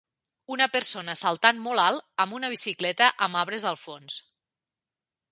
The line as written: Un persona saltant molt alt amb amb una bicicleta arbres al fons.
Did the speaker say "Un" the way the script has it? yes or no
no